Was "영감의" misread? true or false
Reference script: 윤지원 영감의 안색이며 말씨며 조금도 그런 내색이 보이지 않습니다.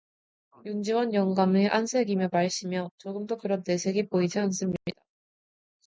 false